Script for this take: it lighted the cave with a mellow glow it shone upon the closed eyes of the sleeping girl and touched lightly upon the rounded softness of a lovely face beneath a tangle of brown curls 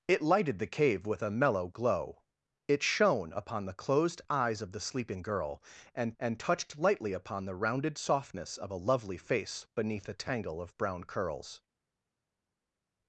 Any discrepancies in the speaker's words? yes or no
yes